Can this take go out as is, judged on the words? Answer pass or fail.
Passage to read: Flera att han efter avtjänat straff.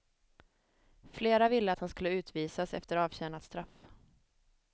fail